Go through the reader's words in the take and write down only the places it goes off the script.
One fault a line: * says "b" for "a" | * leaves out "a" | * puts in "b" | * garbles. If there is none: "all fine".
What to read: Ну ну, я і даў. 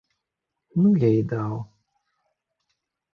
* leaves out "ну"